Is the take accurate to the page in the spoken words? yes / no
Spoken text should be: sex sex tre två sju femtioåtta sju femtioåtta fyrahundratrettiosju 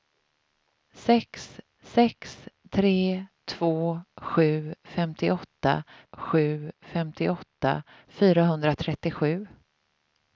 yes